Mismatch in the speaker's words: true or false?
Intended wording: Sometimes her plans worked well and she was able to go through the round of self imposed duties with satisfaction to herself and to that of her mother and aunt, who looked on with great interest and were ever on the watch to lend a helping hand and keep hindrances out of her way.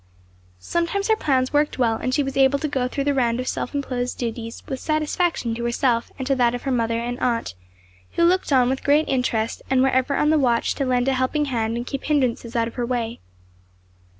false